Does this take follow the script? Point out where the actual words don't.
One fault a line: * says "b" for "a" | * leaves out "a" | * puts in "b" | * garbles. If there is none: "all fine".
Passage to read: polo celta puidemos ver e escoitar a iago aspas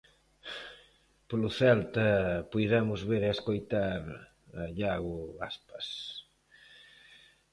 all fine